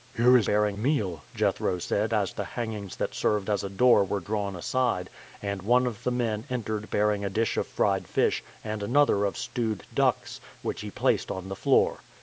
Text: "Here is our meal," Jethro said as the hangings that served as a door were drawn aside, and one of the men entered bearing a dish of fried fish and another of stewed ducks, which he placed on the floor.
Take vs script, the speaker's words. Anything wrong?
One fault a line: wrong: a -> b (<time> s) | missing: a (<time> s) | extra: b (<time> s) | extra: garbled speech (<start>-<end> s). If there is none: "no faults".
wrong: our -> bearing (0.4 s)